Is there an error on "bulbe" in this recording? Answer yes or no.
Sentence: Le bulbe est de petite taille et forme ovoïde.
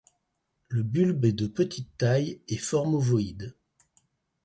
no